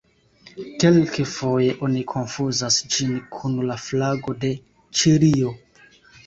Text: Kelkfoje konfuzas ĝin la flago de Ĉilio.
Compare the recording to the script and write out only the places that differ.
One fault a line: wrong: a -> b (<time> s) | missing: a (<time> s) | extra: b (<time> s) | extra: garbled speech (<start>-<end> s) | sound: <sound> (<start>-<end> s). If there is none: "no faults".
extra: oni (1.9 s)
extra: kun (3.3 s)